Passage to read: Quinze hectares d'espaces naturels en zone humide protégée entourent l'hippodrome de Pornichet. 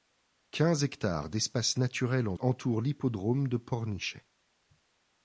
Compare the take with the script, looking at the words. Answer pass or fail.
fail